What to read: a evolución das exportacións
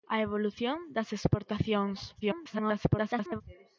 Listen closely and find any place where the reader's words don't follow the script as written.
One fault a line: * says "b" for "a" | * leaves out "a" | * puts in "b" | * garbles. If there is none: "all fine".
* garbles